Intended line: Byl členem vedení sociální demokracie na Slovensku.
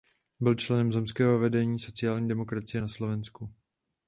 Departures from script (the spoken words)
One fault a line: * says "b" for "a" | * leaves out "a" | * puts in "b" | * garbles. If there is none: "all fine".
* puts in "zemského"